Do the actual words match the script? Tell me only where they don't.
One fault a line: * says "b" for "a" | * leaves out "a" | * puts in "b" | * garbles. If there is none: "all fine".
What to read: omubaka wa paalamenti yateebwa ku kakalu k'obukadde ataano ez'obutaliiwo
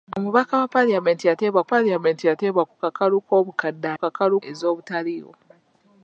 * puts in "paalamenti yateebwa"
* says "kakalu" for "ataano"